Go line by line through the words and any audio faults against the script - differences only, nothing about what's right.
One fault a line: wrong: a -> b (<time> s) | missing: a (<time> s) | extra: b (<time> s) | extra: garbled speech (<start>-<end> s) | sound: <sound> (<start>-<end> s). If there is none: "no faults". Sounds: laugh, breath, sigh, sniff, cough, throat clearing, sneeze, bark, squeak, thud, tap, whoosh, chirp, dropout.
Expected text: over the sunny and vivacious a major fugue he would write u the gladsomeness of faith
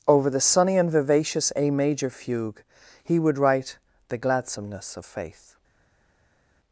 missing: u (3.8 s)